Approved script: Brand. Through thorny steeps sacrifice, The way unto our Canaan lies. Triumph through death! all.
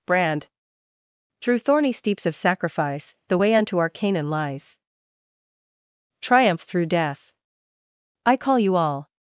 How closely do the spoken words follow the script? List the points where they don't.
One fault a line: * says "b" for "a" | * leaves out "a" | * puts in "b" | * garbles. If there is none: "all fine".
* puts in "of"
* puts in "I call you"